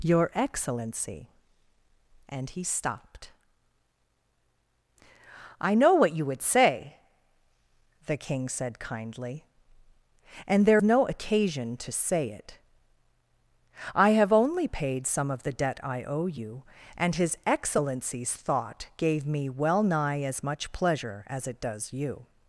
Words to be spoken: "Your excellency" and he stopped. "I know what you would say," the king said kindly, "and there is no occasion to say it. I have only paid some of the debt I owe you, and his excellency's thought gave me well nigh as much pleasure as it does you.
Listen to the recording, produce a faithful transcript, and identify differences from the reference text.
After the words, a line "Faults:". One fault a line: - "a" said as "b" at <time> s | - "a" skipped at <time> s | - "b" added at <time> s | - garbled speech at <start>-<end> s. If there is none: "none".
"Your excellency" and he stopped. "I know what you would say," the king said kindly, "and there no occasion to say it. I have only paid some of the debt I owe you, and his excellency's thought gave me well nigh as much pleasure as it does you.
Faults:
- "is" skipped at 10.8 s